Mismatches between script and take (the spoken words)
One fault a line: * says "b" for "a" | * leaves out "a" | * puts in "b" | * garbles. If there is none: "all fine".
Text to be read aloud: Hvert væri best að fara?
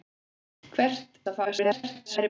* leaves out "væri best"
* garbles